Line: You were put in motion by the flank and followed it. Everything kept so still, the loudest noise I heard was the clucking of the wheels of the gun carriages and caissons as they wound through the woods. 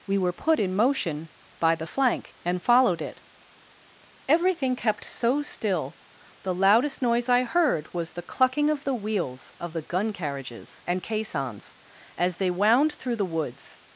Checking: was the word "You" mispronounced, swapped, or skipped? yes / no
yes